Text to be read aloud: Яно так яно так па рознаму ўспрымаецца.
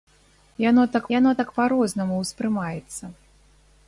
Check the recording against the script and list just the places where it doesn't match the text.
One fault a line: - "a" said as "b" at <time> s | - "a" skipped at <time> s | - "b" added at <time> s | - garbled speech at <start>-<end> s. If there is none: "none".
none